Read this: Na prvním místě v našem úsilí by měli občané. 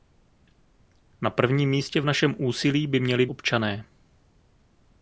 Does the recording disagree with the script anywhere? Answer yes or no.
no